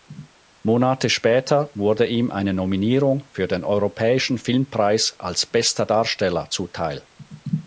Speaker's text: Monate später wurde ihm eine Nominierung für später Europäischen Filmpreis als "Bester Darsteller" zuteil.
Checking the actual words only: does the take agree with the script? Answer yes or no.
no